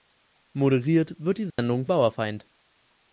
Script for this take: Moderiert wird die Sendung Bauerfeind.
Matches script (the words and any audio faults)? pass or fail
fail